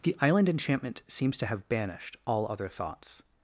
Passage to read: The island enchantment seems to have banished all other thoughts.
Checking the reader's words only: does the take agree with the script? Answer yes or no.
yes